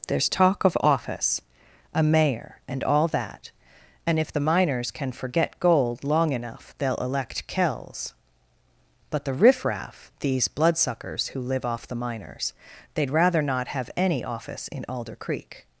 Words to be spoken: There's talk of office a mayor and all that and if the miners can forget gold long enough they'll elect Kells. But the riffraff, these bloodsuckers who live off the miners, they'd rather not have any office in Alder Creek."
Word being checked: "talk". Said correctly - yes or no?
yes